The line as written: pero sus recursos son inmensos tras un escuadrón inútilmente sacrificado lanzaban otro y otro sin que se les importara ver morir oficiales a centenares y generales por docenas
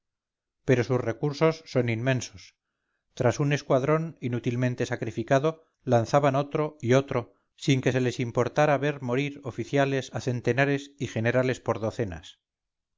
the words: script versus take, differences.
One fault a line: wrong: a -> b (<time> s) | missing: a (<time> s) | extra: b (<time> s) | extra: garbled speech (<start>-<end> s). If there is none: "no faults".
no faults